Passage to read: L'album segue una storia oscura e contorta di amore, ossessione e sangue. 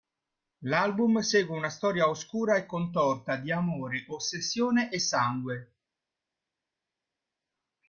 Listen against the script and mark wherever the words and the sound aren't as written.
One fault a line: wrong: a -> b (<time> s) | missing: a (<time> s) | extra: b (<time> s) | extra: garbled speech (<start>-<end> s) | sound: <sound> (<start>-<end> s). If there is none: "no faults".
no faults